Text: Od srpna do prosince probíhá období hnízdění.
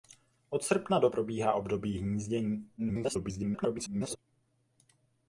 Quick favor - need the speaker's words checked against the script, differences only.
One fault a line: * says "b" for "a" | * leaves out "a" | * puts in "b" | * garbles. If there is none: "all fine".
* leaves out "prosince"
* garbles